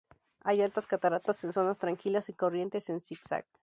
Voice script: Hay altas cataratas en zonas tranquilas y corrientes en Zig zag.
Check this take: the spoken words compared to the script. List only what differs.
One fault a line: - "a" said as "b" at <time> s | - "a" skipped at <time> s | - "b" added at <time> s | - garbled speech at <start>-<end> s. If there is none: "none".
none